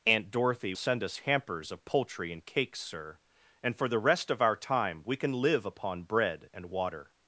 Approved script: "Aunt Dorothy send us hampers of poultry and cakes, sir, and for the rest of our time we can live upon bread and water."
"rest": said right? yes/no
yes